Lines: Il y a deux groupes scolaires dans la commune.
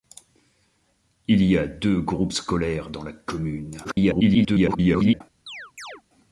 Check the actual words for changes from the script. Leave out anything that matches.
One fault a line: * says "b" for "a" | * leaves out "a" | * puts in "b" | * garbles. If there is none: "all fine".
* garbles